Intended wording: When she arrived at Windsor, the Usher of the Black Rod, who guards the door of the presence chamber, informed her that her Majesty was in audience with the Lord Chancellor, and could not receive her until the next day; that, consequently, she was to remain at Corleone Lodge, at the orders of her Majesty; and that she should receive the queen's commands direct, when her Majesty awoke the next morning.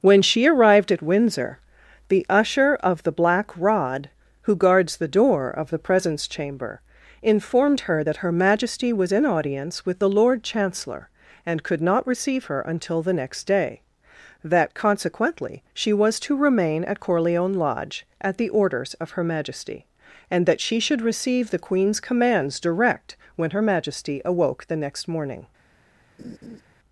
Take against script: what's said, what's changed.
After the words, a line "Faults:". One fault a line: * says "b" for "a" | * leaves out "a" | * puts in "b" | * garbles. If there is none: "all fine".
When she arrived at Windsor, the Usher of the Black Rod, who guards the door of the presence chamber, informed her that her Majesty was in audience with the Lord Chancellor, and could not receive her until the next day; that, consequently, she was to remain at Corleone Lodge, at the orders of her Majesty; and that she should receive the queen's commands direct, when her Majesty awoke the next morning.
Faults:
all fine